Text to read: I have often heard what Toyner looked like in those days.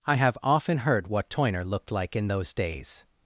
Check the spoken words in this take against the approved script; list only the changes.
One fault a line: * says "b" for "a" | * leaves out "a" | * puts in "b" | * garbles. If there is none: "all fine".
all fine